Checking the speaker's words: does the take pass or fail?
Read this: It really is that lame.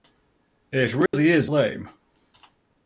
fail